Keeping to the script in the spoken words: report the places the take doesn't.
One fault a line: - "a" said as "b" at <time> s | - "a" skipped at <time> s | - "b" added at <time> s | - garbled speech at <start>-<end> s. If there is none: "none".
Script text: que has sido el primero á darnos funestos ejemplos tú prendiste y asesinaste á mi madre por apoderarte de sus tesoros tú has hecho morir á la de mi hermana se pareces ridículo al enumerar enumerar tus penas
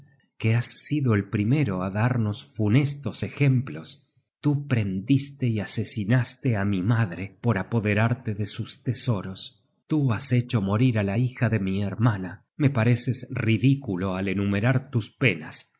- "hija" added at 11.2 s
- "se" said as "me" at 12.6 s
- "enumerar" skipped at 14.9 s